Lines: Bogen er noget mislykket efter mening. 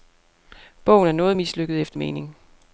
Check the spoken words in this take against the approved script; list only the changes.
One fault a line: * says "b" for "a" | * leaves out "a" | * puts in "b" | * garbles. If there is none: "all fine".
all fine